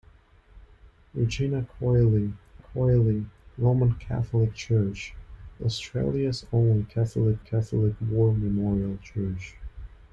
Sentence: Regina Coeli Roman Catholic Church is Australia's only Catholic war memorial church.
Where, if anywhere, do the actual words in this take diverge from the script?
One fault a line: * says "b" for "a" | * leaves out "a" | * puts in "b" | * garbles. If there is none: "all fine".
* puts in "Coeli"
* leaves out "is"
* puts in "Catholic"